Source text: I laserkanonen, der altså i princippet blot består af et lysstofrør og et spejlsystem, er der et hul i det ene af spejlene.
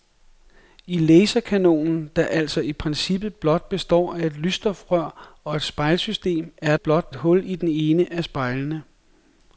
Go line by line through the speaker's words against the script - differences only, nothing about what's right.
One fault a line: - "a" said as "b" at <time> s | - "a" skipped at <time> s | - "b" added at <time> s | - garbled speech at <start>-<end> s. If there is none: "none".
- "der" said as "blot" at 6.8 s